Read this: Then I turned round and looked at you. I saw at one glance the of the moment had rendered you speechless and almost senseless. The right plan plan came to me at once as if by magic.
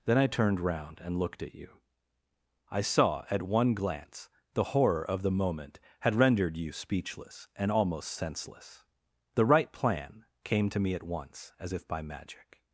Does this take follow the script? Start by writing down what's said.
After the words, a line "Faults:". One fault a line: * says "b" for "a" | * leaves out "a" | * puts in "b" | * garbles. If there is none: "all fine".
Then I turned round and looked at you. I saw at one glance the horror of the moment had rendered you speechless and almost senseless. The right plan came to me at once as if by magic.
Faults:
* puts in "horror"
* leaves out "plan"